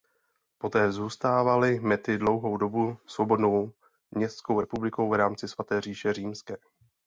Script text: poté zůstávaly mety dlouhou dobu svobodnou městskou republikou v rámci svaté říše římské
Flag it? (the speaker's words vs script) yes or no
no